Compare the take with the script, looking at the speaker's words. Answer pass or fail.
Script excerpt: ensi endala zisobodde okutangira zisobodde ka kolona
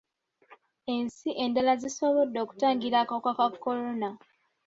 fail